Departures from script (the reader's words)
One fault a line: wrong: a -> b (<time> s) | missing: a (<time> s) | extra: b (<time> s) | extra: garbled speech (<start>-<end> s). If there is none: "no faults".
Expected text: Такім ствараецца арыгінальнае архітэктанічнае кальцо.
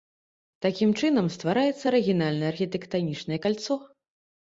extra: чынам (1.0 s)